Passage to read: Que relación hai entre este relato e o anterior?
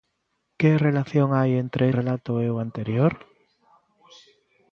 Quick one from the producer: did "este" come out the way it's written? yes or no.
no